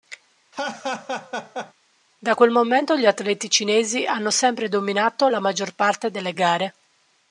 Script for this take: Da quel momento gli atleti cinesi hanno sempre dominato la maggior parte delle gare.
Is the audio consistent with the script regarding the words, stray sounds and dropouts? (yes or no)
no